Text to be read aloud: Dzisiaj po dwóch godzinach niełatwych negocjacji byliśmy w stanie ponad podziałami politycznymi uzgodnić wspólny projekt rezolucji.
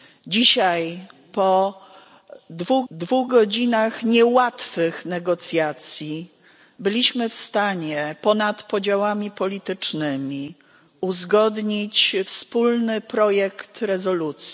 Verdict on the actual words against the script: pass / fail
fail